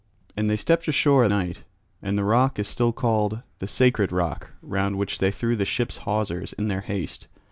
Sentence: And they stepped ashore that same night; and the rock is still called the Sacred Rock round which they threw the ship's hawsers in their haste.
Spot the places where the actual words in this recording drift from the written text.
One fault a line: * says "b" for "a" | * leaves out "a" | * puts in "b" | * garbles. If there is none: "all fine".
* leaves out "that same"